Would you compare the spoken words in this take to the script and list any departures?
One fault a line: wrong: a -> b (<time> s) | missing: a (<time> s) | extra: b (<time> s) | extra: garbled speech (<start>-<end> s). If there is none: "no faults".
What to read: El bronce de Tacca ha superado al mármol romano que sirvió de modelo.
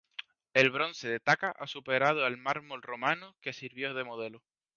no faults